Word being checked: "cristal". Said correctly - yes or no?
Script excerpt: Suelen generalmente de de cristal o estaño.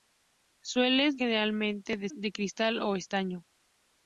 yes